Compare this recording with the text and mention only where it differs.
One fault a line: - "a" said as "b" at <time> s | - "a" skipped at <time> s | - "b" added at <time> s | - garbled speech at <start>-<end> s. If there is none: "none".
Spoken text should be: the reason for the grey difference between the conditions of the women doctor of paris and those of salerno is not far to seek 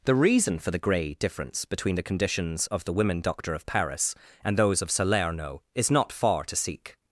none